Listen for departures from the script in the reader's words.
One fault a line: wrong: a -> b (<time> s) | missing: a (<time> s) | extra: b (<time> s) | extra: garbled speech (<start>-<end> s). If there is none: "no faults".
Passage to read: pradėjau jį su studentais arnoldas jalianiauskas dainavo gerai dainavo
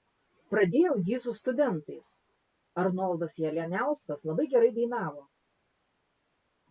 wrong: dainavo -> labai (4.3 s)